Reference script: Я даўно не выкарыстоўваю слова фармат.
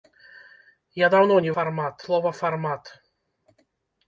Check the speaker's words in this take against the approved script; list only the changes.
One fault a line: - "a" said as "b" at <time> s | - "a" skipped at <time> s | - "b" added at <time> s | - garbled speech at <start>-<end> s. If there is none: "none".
- "выкарыстоўваю" said as "фармат" at 1.6 s